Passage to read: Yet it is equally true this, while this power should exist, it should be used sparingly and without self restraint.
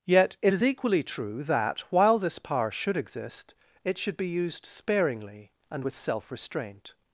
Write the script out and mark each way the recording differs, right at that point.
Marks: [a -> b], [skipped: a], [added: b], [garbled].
Yet it is equally true [this, -> that] while this power should exist, it should be used sparingly and [without -> with] self restraint.